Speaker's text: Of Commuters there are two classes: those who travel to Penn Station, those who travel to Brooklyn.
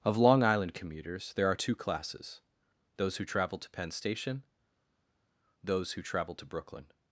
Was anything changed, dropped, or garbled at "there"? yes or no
no